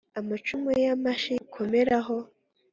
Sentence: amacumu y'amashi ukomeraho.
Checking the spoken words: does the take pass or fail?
pass